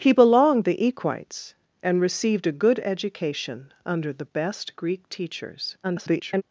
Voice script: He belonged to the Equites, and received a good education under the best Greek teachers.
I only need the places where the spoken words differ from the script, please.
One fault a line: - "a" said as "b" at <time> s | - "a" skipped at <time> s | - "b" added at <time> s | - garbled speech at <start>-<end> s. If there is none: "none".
- "to" skipped at 0.7 s
- garbled speech at 5.8-6.4 s